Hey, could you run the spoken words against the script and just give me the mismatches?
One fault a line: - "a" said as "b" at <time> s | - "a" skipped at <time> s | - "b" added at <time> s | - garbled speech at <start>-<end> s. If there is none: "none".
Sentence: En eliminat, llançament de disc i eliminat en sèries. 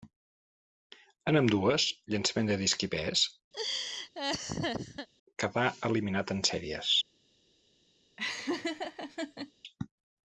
- "eliminat" said as "ambdues" at 1.4 s
- "pes quedà" added at 3.0 s